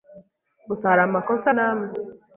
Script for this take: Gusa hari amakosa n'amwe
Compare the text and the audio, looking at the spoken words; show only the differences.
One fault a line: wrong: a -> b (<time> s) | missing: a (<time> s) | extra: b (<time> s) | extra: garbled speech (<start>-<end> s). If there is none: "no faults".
no faults